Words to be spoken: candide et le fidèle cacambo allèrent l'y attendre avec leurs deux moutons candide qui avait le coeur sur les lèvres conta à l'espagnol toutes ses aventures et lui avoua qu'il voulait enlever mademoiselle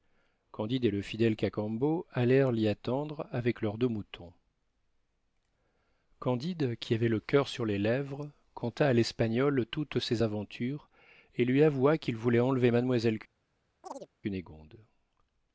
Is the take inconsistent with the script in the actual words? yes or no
no